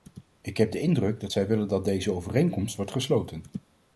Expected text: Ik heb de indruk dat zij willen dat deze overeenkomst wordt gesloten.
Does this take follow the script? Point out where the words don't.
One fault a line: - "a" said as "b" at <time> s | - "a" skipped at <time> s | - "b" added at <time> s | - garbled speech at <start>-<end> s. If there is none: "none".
none